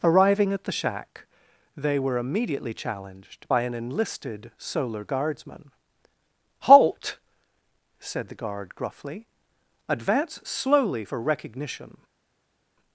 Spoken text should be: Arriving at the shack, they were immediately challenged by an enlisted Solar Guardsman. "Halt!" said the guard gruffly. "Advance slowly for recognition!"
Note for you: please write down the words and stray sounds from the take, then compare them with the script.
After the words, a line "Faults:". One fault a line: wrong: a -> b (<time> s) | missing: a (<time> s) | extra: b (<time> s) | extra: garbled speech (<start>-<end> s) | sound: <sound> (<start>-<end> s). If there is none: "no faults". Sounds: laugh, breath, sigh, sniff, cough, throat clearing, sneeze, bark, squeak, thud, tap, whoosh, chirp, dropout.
Arriving at the shack, they were immediately challenged by an enlisted Solar Guardsman. "Halt!" said the guard gruffly. "Advance slowly for recognition!"
Faults:
no faults